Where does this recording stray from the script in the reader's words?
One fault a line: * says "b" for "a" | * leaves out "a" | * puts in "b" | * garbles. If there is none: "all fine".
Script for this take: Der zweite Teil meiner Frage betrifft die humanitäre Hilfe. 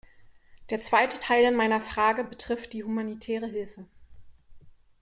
all fine